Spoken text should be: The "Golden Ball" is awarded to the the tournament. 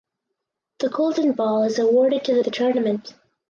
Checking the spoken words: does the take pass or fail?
pass